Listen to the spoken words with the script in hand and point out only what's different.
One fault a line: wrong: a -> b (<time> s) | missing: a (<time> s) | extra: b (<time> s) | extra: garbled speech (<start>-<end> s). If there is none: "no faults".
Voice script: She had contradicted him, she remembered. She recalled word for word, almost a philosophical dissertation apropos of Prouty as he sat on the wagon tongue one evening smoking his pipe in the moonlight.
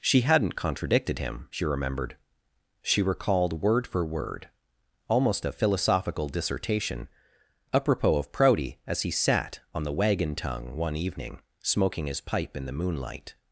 wrong: had -> hadn't (0.2 s)